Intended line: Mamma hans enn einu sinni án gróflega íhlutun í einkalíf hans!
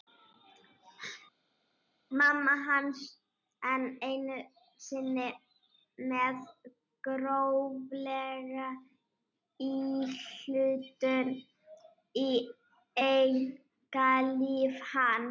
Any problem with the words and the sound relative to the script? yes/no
yes